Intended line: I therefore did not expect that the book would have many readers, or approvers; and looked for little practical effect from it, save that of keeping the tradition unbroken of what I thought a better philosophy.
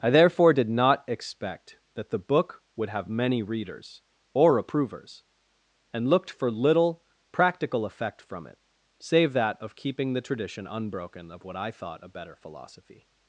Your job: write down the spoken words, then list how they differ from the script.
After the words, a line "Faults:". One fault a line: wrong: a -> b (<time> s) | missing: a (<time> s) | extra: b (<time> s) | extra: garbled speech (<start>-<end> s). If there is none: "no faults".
I therefore did not expect that the book would have many readers, or approvers; and looked for little practical effect from it, save that of keeping the tradition unbroken of what I thought a better philosophy.
Faults:
no faults